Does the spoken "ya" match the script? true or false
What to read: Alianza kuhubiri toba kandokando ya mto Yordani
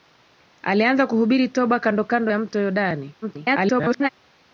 true